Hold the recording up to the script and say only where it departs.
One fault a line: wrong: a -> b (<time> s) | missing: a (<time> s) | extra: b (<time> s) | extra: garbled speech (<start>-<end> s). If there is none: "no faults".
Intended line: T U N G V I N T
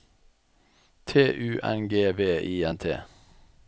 no faults